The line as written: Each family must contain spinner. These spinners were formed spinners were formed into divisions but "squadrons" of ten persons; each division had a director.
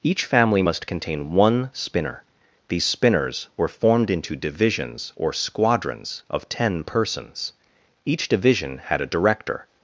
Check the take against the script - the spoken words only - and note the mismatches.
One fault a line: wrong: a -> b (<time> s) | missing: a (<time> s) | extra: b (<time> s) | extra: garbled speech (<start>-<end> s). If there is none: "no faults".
extra: one (1.3 s)
missing: spinners were formed (4.1 s)
wrong: but -> or (5.1 s)